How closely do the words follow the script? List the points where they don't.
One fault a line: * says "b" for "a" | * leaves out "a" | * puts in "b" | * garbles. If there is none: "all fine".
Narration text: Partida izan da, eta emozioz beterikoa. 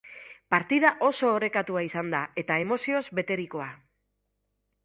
* puts in "oso orekatua"